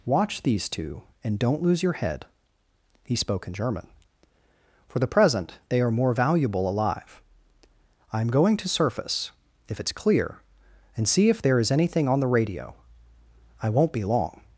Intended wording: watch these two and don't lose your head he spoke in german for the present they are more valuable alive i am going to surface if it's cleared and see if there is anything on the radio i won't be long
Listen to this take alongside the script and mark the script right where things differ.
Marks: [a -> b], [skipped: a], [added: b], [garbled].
watch these two and don't lose your head he spoke in german for the present they are more valuable alive i am going to surface if it's [cleared -> clear] and see if there is anything on the radio i won't be long